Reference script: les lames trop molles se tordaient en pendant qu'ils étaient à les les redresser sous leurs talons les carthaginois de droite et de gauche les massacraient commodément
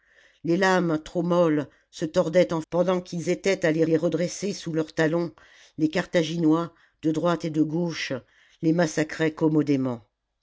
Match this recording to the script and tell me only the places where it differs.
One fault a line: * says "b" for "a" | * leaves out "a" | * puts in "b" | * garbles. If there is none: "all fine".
all fine